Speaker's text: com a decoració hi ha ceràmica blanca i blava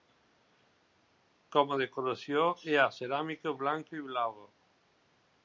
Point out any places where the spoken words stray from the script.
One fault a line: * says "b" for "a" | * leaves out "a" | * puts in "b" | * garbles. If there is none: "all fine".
all fine